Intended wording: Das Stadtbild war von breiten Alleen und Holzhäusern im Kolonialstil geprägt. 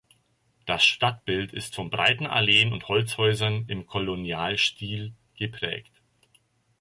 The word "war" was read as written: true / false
false